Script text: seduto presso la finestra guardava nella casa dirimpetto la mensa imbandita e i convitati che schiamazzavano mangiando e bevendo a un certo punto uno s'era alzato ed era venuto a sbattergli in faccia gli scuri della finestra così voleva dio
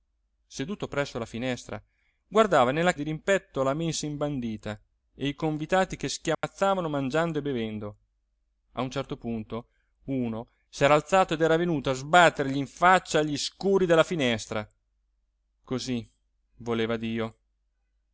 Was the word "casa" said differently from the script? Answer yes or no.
yes